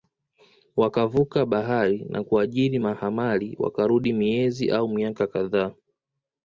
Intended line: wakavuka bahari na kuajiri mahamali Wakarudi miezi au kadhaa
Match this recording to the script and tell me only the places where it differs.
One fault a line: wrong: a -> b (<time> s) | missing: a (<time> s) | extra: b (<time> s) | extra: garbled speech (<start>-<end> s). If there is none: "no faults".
extra: miaka (4.9 s)